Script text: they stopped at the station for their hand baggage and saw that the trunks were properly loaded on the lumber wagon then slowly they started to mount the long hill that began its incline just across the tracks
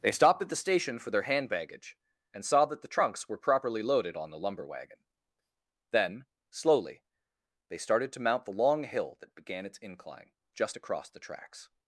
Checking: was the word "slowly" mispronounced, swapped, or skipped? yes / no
no